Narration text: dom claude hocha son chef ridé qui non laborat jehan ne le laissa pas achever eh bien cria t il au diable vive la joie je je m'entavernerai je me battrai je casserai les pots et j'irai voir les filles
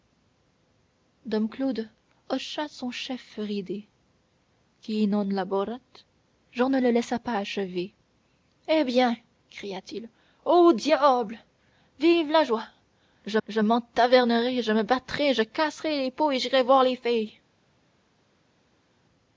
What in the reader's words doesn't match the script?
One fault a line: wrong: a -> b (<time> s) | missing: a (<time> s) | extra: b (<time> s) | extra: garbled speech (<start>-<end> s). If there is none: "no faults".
no faults